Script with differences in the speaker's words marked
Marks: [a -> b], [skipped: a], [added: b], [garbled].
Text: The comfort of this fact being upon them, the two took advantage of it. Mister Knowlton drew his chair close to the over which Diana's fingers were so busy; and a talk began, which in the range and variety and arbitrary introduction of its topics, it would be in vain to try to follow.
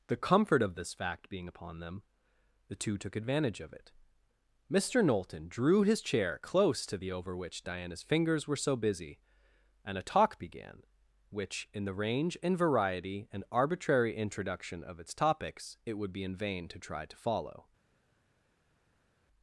The comfort of this fact being upon them, the two took advantage of it. Mister Knowlton drew his chair close to the over which Diana's fingers were so busy; and a talk began, which in the range and variety and arbitrary introduction of its topics, it would be in vain to try to follow.